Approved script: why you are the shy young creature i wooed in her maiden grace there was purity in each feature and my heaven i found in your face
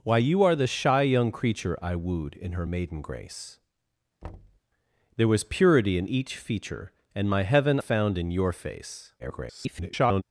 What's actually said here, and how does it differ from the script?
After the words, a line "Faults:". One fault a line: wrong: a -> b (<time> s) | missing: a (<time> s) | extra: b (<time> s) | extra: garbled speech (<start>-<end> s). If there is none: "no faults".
why you are the shy young creature i wooed in her maiden grace there was purity in each feature and my heaven found in your face [garbled]
Faults:
missing: i (7.8 s)
extra: garbled speech (9.2-10.2 s)